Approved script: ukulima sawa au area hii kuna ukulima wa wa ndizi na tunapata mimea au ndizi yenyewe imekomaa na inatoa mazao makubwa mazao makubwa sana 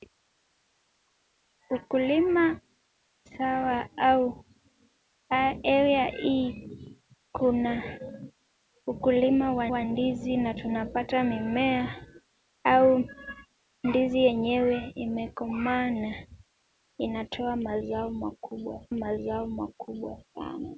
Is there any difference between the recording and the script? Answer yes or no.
no